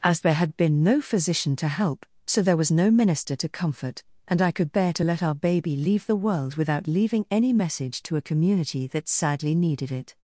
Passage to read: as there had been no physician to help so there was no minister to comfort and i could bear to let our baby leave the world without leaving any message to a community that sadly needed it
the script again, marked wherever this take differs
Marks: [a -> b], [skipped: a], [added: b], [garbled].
as there had been no physician to help so there was no minister to comfort and i could bear to let our baby leave the world without leaving any message to a community that sadly needed it